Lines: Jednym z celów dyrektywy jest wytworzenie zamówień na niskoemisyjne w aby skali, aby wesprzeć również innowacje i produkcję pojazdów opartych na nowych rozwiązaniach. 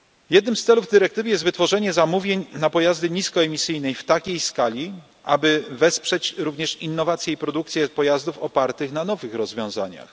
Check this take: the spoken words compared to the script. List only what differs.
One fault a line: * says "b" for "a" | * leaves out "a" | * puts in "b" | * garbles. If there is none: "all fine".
* puts in "pojazdy"
* says "takiej" for "aby"